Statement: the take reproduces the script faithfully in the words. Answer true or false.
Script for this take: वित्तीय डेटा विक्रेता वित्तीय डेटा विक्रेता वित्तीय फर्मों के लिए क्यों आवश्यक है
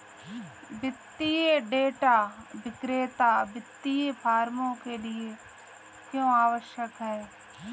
false